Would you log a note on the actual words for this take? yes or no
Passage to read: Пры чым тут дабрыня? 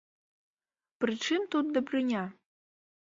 no